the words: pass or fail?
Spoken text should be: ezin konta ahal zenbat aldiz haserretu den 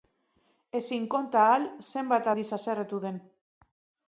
pass